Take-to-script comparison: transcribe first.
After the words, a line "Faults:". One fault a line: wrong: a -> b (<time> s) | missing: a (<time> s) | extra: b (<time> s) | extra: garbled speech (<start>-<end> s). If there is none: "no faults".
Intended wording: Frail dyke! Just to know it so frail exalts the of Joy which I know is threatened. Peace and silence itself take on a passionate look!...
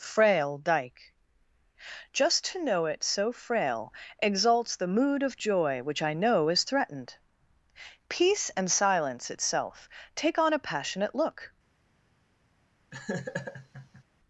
Frail dyke! Just to know it so frail exalts the mood of Joy which I know is threatened. Peace and silence itself take on a passionate look!...
Faults:
extra: mood (4.9 s)